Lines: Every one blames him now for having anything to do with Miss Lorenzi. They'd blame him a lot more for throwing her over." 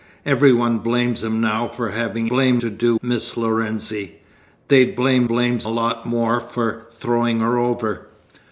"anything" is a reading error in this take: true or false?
true